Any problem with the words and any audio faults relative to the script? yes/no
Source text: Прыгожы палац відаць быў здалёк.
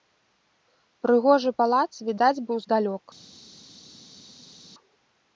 no